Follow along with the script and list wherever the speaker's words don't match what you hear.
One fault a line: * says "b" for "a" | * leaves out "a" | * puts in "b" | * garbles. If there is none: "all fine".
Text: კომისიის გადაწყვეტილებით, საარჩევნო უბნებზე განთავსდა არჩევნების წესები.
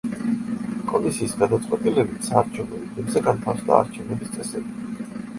all fine